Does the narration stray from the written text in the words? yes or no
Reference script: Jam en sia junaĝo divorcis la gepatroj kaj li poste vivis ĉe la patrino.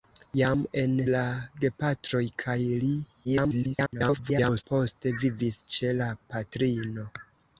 yes